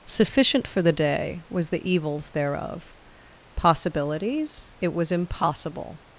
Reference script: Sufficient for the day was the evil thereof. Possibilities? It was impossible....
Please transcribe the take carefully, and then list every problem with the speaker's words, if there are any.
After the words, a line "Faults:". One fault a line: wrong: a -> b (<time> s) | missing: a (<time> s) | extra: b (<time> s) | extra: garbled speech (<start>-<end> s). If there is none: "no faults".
Sufficient for the day was the evils thereof. Possibilities? It was impossible....
Faults:
wrong: evil -> evils (1.9 s)